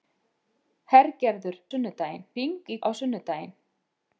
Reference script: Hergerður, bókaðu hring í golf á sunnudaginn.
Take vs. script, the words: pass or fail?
fail